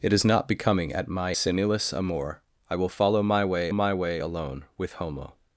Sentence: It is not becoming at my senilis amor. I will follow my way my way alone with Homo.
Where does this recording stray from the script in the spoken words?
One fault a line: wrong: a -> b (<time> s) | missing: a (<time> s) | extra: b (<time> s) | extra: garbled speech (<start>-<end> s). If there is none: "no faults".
no faults